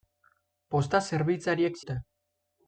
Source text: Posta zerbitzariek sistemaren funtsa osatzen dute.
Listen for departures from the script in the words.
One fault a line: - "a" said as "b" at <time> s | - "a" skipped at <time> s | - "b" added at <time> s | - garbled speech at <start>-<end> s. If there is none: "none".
- "sistemaren funtsa osatzen" skipped at 1.8 s